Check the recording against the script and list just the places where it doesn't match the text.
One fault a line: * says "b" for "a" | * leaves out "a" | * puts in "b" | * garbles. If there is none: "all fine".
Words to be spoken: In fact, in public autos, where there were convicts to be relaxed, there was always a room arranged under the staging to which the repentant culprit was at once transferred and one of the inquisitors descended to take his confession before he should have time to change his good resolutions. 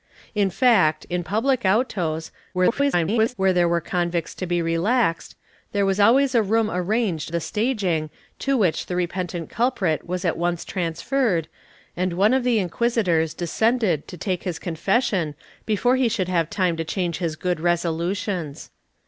* garbles
* leaves out "under"